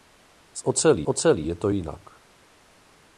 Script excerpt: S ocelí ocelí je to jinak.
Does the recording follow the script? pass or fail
pass